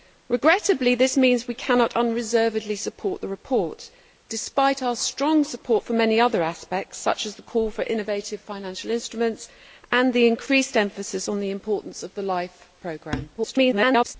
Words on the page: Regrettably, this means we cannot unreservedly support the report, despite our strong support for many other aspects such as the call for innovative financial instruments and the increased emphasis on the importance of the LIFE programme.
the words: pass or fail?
fail